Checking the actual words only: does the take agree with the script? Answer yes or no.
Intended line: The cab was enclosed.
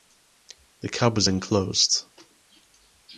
yes